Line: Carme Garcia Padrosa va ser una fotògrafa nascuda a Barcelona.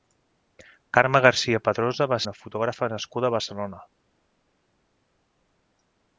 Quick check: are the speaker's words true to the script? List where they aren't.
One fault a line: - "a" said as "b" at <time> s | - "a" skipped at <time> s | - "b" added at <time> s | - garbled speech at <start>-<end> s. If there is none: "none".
- "ser" skipped at 2.2 s